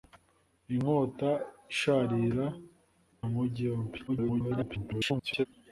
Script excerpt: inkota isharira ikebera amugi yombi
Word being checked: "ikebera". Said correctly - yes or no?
no